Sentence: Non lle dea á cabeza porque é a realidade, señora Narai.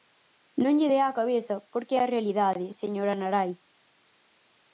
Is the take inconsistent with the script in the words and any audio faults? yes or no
no